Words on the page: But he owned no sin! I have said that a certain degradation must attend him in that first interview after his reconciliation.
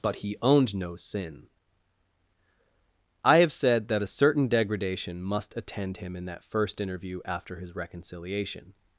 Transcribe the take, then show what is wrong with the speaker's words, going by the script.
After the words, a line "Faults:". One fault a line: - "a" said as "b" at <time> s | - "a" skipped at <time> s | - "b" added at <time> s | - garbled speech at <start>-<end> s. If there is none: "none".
But he owned no sin! I have said that a certain degradation must attend him in that first interview after his reconciliation.
Faults:
none